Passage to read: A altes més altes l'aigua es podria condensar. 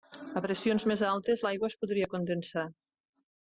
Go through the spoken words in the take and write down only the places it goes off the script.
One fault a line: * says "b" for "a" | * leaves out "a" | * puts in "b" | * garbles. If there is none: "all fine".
* says "pressions" for "altes"